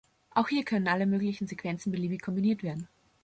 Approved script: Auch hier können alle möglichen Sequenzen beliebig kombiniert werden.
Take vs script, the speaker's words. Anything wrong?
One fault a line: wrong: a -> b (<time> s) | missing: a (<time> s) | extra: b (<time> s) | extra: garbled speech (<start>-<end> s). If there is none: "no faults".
no faults